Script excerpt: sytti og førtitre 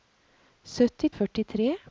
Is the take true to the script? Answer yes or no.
yes